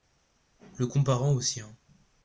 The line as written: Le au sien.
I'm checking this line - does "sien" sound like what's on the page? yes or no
yes